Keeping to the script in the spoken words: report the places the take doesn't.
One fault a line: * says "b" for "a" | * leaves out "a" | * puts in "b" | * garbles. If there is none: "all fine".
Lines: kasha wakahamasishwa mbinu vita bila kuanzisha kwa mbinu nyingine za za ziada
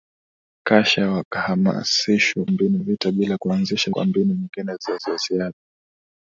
all fine